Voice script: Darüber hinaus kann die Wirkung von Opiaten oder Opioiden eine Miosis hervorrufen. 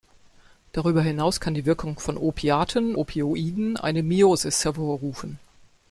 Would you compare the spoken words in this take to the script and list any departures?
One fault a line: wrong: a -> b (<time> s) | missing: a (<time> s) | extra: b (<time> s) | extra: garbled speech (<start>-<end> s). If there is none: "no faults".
missing: oder (3.0 s)